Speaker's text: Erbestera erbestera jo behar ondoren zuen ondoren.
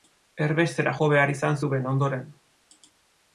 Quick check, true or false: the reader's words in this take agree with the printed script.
false